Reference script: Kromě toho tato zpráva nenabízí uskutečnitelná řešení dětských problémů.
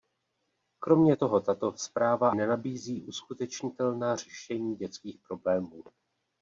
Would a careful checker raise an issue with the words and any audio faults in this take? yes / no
no